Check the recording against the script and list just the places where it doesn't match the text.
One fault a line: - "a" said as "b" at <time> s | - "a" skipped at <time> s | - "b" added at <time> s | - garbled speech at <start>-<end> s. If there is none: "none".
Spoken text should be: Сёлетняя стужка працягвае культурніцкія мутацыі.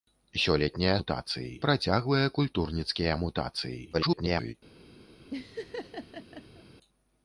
- "стужка" said as "мутацыі" at 1.0 s
- garbled speech at 3.9-4.5 s